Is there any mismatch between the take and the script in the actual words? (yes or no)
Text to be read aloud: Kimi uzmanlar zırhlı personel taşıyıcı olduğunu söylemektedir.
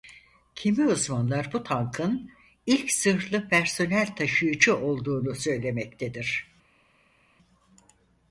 yes